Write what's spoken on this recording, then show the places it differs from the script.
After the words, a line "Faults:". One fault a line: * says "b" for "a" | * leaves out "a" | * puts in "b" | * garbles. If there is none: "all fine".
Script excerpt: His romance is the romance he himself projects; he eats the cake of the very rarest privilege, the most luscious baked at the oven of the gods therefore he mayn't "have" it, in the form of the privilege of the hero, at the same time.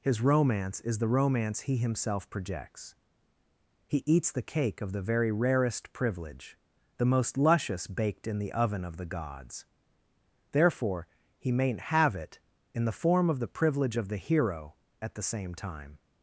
His romance is the romance he himself projects; he eats the cake of the very rarest privilege, the most luscious baked in the oven of the gods therefore he mayn't "have" it, in the form of the privilege of the hero, at the same time.
Faults:
* says "in" for "at"